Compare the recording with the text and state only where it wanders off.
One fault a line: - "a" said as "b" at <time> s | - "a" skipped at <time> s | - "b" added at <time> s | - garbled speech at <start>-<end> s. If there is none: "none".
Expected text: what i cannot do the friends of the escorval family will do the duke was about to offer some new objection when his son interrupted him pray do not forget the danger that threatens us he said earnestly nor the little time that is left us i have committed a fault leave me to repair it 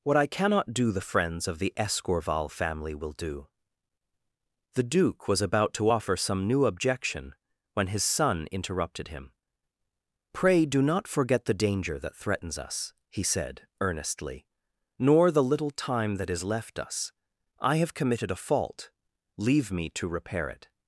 none